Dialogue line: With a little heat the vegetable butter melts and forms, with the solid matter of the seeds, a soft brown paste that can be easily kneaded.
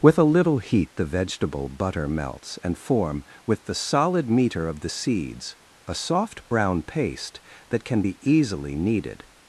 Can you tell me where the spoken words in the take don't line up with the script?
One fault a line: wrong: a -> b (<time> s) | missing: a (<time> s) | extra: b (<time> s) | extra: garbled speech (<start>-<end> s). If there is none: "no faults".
wrong: forms -> form (2.8 s)
wrong: matter -> meter (4.3 s)